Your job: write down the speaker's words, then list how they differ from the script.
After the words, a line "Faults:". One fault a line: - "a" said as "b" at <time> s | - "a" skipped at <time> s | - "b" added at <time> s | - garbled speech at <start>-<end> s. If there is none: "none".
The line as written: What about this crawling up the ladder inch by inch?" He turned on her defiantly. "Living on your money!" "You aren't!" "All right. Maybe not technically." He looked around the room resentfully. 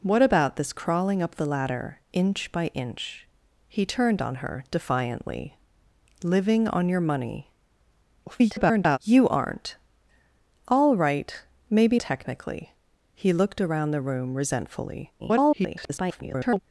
What about this crawling up the ladder inch by inch?" He turned on her defiantly. "Living on your money!" [garbled] "You aren't!" "All right. Maybe technically." He looked around the room resentfully. [garbled]
Faults:
- garbled speech at 8.3-9.0 s
- "not" skipped at 12.0 s
- garbled speech at 15.2-16.6 s